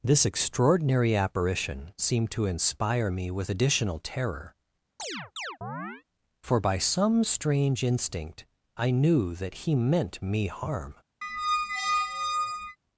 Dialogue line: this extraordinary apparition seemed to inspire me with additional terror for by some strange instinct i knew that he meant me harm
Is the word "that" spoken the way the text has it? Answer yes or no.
yes